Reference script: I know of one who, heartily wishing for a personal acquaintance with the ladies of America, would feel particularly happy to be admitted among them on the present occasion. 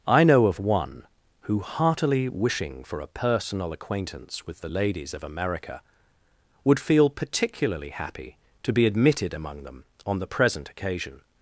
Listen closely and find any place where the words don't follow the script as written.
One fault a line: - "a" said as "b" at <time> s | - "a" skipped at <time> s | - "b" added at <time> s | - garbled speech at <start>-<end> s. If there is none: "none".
none